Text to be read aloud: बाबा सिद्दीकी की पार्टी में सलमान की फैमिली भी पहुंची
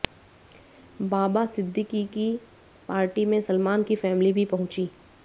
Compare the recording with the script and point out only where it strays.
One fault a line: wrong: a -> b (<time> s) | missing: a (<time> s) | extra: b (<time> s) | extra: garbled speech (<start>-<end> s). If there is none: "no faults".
no faults